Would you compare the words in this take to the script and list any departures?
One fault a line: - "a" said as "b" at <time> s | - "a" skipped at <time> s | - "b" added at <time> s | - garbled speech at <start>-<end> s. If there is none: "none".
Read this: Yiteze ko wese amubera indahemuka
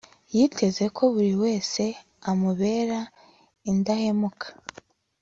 - "buri" added at 1.1 s